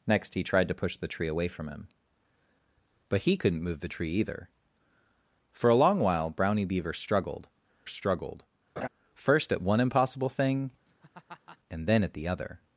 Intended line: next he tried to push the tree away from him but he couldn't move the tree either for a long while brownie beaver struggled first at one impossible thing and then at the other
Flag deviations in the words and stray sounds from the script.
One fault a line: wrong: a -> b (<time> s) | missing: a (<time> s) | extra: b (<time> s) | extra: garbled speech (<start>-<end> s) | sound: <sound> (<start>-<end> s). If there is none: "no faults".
extra: struggled (7.9 s)
sound: laugh (8.8-8.9 s)
sound: laugh (10.9-11.6 s)